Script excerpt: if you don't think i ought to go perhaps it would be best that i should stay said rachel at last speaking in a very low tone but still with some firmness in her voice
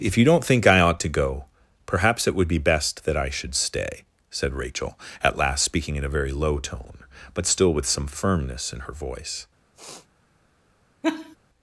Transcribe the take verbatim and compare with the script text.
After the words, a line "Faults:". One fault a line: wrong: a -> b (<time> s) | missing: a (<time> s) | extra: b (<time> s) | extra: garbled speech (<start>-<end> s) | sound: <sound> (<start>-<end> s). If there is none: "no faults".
if you don't think i ought to go perhaps it would be best that i should stay said rachel at last speaking in a very low tone but still with some firmness in her voice
Faults:
sound: sniff (9.7-10.1 s)
sound: laugh (11.0-11.4 s)